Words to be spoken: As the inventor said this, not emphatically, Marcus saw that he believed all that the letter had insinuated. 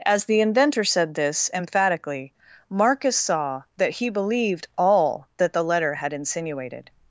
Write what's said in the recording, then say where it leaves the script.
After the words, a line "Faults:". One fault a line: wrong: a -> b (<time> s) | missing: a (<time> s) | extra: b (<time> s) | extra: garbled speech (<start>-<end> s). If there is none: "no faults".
As the inventor said this, emphatically, Marcus saw that he believed all that the letter had insinuated.
Faults:
missing: not (1.5 s)